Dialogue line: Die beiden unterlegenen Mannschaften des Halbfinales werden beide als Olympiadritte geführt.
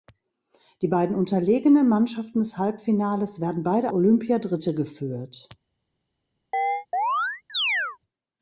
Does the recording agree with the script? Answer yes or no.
no